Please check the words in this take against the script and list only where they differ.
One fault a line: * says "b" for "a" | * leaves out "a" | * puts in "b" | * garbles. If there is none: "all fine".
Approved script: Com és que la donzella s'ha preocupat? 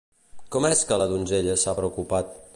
all fine